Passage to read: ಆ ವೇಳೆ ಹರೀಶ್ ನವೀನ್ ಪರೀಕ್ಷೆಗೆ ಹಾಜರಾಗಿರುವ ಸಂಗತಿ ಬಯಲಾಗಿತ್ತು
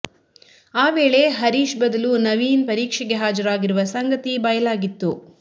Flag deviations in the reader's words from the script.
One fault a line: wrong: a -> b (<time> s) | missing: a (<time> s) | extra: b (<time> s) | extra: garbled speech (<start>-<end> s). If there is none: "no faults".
extra: ಬದಲು (1.8 s)